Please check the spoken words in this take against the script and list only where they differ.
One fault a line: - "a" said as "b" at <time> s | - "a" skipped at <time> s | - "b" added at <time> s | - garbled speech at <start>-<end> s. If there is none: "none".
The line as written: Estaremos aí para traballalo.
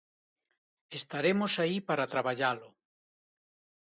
none